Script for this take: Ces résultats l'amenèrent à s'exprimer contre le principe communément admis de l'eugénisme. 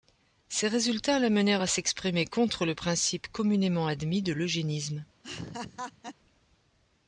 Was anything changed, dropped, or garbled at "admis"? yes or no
no